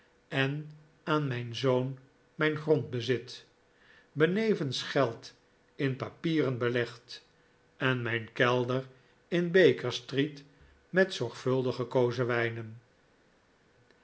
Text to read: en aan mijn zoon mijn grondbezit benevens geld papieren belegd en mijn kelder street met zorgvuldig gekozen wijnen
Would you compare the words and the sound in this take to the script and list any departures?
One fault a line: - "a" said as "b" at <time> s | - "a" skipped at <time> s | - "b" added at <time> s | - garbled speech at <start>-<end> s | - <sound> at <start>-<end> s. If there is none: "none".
- "in" added at 5.8 s
- "in baker" added at 9.3 s